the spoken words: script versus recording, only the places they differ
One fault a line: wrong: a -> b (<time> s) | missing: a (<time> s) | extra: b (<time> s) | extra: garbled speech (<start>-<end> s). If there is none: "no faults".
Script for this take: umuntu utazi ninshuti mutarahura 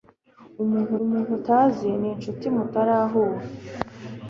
extra: umuntu (1.0 s)